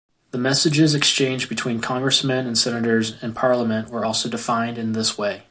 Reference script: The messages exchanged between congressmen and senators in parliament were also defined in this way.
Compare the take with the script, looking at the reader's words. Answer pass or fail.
pass